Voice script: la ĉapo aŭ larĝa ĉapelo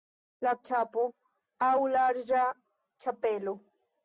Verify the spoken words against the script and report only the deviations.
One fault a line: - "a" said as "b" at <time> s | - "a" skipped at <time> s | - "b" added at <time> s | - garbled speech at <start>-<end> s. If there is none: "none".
none